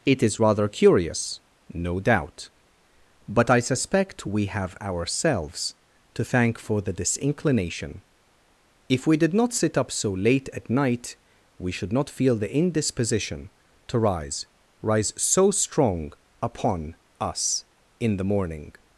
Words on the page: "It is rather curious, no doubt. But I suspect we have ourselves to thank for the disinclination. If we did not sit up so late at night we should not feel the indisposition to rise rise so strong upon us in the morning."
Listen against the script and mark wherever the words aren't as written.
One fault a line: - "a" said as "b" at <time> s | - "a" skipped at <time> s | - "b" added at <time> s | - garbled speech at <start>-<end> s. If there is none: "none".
none